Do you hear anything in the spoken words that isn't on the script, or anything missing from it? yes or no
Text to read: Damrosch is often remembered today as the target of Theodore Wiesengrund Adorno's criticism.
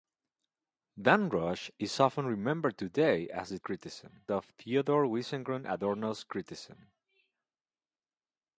yes